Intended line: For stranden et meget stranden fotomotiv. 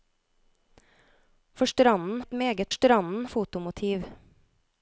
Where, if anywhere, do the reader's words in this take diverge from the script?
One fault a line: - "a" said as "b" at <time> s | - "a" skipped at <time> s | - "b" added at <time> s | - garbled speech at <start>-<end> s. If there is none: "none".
none